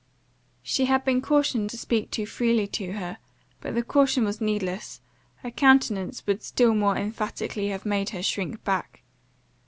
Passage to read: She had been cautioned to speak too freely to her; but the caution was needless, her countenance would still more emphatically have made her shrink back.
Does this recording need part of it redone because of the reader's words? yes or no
no